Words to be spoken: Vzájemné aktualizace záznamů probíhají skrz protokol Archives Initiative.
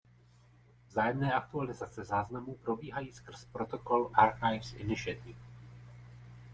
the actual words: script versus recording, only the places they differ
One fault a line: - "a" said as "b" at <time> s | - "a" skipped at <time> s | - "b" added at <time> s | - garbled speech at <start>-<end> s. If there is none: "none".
none